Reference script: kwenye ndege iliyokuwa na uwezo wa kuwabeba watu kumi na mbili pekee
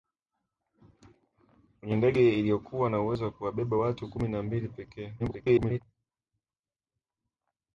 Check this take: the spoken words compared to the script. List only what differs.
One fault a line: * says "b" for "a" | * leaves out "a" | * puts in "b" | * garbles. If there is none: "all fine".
* garbles